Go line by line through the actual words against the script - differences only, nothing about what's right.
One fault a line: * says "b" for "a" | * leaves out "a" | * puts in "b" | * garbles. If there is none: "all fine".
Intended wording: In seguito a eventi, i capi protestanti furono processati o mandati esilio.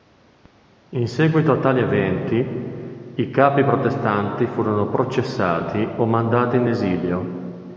* puts in "tali"
* puts in "in"